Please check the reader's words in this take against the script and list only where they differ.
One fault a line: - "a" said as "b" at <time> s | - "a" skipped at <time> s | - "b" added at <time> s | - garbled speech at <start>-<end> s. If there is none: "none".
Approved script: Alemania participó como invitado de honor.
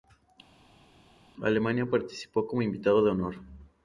none